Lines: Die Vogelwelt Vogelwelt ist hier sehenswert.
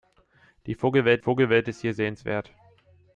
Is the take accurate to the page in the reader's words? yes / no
yes